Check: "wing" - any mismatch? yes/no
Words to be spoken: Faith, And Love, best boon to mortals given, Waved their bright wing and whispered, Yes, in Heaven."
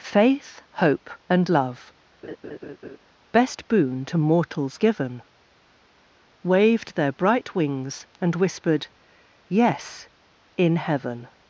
yes